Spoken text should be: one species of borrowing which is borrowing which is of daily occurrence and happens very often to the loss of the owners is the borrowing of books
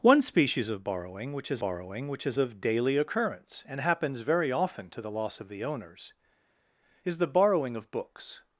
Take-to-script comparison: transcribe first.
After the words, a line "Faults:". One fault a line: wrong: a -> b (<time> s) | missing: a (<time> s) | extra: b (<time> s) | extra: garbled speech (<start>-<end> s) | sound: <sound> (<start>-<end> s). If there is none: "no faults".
one species of borrowing which is borrowing which is of daily occurrence and happens very often to the loss of the owners is the borrowing of books
Faults:
no faults